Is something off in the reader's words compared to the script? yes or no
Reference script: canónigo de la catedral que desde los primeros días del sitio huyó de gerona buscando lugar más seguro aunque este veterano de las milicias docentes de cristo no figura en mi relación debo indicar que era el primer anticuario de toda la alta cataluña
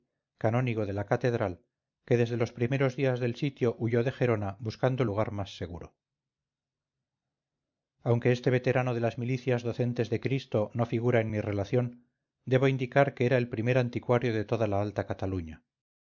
no